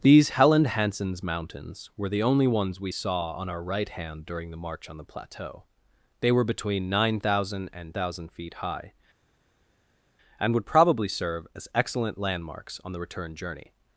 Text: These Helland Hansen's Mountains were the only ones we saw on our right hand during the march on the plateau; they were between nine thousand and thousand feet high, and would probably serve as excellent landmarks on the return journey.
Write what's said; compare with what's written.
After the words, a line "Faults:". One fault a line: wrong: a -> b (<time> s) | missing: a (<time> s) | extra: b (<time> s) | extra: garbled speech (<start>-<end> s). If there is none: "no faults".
These Helland Hansen's Mountains were the only ones we saw on our right hand during the march on the plateau; they were between nine thousand and thousand feet high, and would probably serve as excellent landmarks on the return journey.
Faults:
no faults